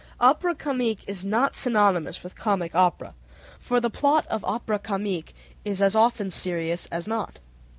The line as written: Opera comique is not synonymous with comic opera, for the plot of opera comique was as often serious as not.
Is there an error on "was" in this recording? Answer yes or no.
yes